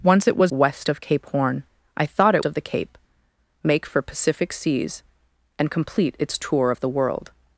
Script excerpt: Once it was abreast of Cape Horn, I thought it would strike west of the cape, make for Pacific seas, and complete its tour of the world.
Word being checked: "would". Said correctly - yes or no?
no